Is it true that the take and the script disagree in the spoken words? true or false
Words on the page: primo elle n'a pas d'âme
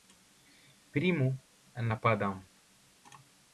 false